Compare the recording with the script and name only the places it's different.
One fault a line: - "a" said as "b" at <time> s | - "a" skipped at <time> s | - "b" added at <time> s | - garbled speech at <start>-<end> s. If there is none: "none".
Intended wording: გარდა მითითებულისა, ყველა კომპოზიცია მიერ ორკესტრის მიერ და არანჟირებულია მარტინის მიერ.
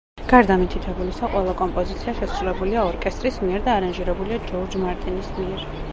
- "მიერ" said as "შესრულებულია" at 2.2 s
- "ჯორჯ" added at 4.5 s